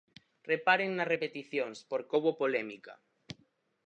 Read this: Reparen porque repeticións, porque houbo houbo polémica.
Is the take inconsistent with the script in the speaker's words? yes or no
yes